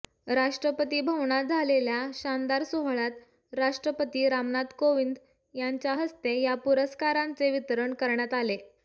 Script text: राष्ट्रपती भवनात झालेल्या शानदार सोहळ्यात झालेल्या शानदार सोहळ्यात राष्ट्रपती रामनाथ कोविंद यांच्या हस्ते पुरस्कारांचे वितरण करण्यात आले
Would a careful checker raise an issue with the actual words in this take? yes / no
yes